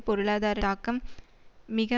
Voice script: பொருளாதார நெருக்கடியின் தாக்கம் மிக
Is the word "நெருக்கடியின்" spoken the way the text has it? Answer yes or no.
no